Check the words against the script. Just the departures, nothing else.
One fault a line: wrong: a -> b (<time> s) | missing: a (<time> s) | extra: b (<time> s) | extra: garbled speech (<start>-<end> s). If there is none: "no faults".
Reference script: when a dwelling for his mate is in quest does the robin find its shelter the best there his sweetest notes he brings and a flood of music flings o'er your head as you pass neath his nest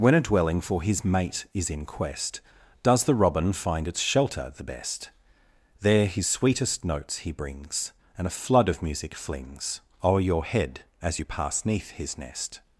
no faults